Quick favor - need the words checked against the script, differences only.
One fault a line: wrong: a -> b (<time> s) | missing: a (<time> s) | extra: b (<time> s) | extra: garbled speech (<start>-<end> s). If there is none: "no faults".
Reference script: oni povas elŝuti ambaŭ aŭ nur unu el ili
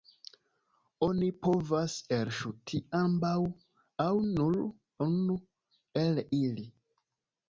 no faults